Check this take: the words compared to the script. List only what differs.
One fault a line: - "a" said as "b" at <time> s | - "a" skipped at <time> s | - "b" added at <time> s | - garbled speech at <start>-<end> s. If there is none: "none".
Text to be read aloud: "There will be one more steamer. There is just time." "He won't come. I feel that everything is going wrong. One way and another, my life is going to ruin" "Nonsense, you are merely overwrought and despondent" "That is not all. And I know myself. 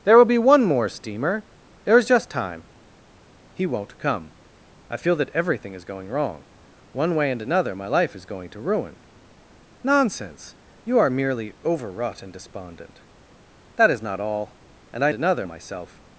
- "know" said as "another" at 15.1 s